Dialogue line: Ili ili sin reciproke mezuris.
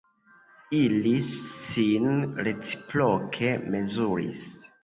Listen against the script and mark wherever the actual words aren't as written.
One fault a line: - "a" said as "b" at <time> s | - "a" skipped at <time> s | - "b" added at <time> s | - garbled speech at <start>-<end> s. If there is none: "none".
- "ili" skipped at 1.1 s